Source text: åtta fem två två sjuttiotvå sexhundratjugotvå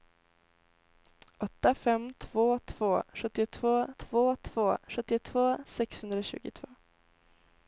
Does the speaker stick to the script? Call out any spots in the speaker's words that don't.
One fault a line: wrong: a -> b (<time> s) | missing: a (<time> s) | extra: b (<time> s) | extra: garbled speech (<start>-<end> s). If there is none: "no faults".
extra: två två sjuttiotvå (3.9 s)